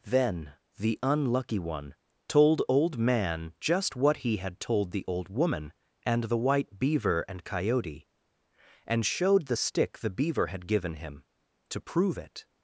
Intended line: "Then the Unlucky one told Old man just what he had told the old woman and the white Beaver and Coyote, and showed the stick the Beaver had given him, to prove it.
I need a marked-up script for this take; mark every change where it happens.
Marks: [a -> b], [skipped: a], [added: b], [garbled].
"Then the Unlucky one told Old man just what he had told the old woman and the white Beaver and Coyote, and showed the stick the Beaver had given him, to prove it.